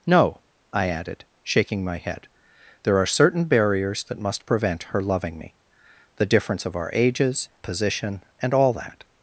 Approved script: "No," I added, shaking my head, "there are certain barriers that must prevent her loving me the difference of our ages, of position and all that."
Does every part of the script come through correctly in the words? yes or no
no